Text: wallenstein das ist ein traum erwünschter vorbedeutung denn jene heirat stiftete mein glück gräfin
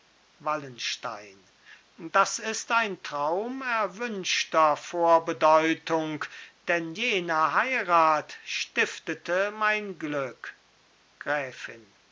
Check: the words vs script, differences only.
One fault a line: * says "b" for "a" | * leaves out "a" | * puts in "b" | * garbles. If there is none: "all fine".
all fine